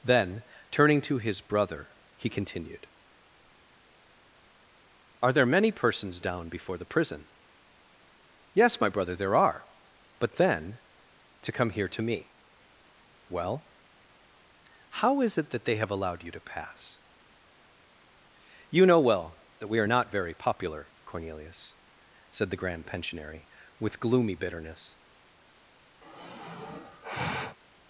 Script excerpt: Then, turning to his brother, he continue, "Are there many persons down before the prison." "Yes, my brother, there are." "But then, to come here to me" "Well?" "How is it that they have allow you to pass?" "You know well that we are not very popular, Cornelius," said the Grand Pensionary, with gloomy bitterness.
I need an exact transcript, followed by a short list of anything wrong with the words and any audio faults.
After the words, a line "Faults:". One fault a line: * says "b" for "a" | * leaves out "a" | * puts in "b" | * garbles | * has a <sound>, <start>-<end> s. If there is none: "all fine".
Then, turning to his brother, he continued, "Are there many persons down before the prison." "Yes, my brother, there are." "But then, to come here to me" "Well?" "How is it that they have allowed you to pass?" "You know well that we are not very popular, Cornelius," said the Grand Pensionary, with gloomy bitterness.
Faults:
* says "continued" for "continue"
* says "allowed" for "allow"
* has a sigh, 26.0-27.6 s